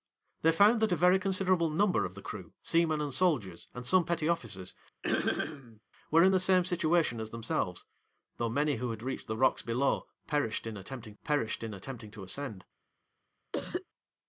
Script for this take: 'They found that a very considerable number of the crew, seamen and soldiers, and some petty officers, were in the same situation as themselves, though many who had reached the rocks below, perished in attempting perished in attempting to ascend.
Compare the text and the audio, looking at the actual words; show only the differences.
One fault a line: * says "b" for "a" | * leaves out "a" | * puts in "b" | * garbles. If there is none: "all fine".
all fine